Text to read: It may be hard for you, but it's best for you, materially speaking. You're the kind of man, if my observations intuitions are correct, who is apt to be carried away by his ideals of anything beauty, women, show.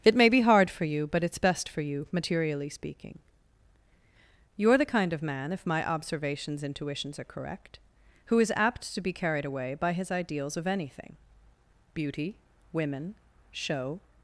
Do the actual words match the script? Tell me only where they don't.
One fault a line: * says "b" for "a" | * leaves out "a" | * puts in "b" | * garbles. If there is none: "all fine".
all fine